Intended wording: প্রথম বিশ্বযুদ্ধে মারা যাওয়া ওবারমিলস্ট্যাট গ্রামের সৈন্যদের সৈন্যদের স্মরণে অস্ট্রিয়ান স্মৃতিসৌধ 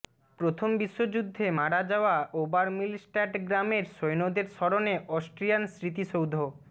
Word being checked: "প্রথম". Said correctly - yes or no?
yes